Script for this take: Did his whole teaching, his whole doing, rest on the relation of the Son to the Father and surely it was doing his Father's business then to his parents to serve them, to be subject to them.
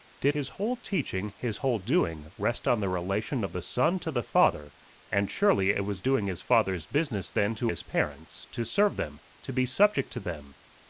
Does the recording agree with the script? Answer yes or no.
yes